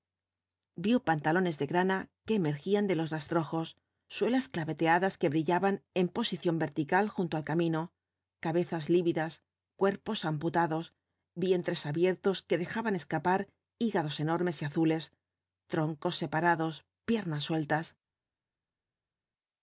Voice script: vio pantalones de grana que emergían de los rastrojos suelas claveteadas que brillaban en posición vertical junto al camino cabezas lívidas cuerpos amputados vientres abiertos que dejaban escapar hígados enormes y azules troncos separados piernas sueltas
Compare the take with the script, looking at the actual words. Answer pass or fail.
pass